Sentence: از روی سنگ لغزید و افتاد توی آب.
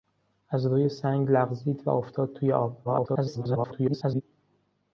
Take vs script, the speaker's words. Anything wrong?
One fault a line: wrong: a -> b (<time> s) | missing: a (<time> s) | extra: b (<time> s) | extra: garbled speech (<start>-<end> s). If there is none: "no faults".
extra: garbled speech (2.8-4.2 s)